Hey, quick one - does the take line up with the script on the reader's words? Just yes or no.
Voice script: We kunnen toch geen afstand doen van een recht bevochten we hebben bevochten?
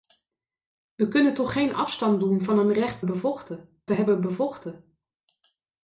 yes